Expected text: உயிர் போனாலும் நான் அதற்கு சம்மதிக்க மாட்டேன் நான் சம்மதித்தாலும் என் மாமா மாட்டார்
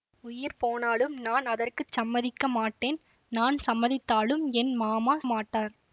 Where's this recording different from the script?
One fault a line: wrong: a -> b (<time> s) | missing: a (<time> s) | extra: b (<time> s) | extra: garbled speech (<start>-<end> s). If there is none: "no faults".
no faults